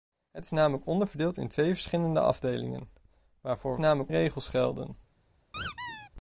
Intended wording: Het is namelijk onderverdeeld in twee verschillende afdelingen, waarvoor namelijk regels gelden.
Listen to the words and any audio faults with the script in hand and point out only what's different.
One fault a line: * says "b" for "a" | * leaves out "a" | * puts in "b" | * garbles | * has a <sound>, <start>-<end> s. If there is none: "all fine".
* has a squeak, 5.5-6.1 s